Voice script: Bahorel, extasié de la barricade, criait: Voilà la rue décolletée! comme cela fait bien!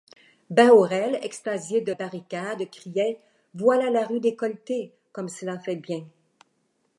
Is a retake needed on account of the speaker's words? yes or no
yes